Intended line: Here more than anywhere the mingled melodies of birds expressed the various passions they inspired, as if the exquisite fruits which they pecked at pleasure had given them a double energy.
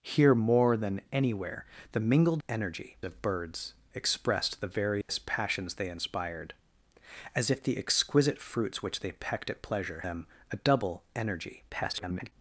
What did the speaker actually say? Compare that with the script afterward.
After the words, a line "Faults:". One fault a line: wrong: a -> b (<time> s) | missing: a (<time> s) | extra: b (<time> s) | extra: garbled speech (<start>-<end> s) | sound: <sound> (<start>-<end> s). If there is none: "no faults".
Here more than anywhere the mingled energy of birds expressed the various passions they inspired, as if the exquisite fruits which they pecked at pleasure them a double energy. [garbled]
Faults:
wrong: melodies -> energy (2.5 s)
sound: dropout (5.0-5.1 s)
missing: had given (10.0 s)
extra: garbled speech (11.7-12.3 s)